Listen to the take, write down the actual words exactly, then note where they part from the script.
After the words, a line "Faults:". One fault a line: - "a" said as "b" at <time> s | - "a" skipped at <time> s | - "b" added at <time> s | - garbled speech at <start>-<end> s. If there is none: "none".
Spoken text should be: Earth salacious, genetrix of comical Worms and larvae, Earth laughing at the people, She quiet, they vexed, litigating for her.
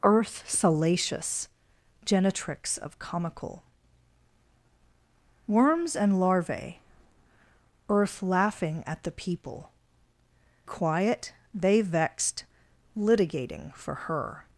Earth salacious, genetrix of comical Worms and larvae, Earth laughing at the people, Quiet, they vexed, litigating for her.
Faults:
- "She" skipped at 9.7 s